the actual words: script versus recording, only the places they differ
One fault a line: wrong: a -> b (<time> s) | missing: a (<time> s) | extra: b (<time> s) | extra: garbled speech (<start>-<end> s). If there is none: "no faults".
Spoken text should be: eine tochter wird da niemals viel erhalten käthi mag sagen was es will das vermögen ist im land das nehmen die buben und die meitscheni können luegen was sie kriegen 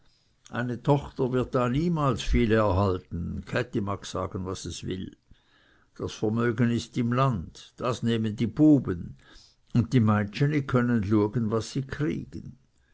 no faults